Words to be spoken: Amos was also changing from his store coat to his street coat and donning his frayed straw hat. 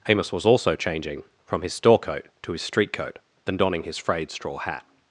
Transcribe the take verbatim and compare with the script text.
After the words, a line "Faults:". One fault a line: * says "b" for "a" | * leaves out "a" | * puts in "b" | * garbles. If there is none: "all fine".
Amos was also changing from his store coat to his street coat then donning his frayed straw hat.
Faults:
* says "then" for "and"